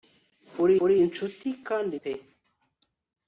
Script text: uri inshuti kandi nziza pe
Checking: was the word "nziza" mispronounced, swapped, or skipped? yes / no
yes